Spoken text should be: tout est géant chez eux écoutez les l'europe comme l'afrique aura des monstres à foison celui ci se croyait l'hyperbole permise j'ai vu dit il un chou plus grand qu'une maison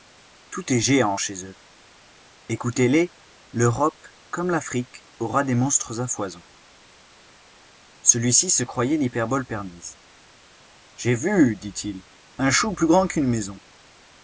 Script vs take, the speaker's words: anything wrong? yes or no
no